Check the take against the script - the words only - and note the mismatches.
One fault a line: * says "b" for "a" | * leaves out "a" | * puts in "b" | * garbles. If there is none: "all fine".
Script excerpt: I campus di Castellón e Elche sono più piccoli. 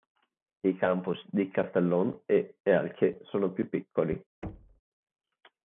all fine